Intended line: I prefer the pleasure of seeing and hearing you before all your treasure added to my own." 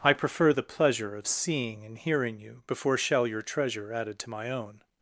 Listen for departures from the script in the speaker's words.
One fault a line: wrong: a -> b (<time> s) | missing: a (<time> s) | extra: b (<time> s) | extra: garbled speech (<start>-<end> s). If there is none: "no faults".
wrong: all -> shall (3.0 s)